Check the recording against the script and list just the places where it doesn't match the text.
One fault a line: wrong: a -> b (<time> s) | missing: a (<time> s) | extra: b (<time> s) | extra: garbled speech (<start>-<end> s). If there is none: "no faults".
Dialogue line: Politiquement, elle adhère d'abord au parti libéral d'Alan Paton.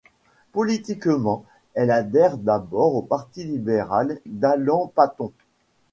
no faults